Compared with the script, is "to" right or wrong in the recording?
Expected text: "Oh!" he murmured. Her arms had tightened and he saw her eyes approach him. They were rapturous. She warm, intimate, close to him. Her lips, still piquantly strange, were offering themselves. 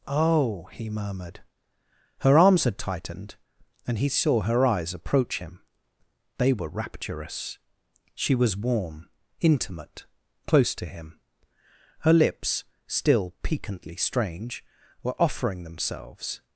right